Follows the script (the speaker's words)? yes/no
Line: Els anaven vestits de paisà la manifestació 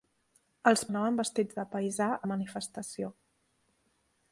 yes